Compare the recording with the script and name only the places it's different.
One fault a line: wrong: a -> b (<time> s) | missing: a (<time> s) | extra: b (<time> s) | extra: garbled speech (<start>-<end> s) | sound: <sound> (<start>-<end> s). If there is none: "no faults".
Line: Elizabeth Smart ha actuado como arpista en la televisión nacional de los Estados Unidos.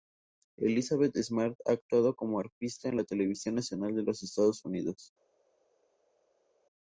no faults